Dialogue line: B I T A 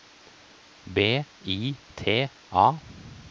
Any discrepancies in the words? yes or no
no